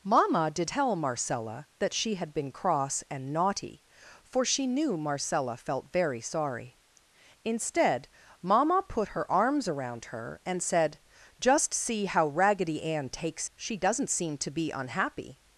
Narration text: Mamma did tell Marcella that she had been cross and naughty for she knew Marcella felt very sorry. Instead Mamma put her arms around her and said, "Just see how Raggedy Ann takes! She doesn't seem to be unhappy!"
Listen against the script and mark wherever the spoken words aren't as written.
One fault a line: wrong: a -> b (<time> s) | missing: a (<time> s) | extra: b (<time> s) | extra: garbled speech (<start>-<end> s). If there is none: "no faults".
no faults